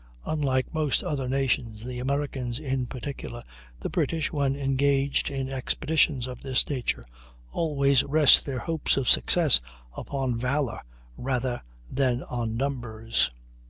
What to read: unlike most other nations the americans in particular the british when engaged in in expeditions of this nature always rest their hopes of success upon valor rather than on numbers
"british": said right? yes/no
yes